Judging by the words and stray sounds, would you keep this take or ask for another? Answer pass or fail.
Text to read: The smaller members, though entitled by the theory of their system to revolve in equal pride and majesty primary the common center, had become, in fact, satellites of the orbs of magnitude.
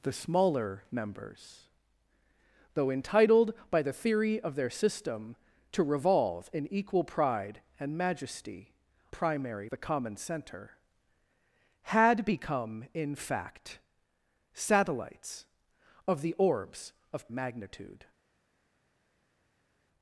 pass